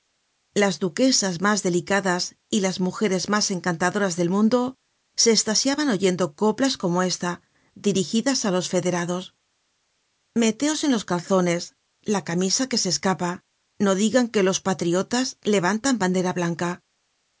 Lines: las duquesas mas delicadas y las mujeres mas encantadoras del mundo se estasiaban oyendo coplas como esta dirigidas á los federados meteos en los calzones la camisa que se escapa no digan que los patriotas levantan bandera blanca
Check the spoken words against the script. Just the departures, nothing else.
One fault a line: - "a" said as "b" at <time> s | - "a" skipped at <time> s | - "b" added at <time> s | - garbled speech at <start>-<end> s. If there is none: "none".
none